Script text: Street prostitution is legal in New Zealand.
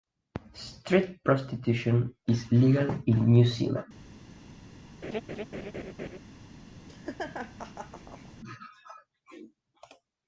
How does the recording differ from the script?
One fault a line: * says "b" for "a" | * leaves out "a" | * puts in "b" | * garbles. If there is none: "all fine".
all fine